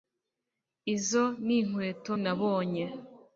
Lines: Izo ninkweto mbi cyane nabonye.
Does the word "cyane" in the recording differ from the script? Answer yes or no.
yes